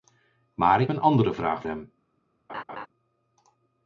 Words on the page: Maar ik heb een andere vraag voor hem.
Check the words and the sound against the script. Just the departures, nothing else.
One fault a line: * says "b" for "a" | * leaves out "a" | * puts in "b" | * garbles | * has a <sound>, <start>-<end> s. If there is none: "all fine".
* leaves out "heb"
* leaves out "voor"
* has a laugh, 2.5-2.9 s